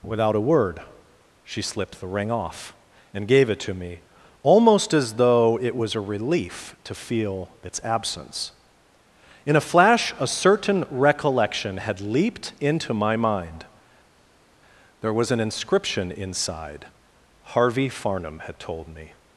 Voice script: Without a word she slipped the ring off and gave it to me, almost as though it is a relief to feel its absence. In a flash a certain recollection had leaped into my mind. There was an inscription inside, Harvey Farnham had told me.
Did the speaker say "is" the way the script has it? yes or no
no